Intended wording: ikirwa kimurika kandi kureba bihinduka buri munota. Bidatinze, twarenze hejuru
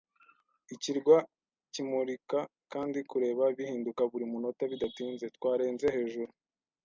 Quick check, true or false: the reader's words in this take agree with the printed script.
true